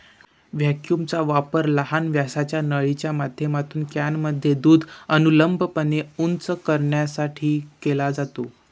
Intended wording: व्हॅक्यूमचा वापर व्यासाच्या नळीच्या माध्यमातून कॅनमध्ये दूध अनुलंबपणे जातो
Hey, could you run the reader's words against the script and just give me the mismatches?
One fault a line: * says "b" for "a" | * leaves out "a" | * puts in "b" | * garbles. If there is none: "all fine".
* puts in "लहान"
* puts in "उंच करण्यासाठी केला"